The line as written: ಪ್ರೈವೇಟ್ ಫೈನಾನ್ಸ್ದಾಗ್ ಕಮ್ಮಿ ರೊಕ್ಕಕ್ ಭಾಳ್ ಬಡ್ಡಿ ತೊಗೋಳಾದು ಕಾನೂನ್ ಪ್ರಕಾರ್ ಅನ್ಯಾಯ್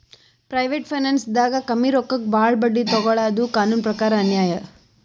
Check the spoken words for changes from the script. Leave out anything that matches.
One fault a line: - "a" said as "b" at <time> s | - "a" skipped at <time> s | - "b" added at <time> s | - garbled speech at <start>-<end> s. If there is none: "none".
none